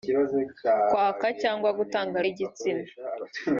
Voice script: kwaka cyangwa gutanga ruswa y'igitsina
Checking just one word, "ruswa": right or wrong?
wrong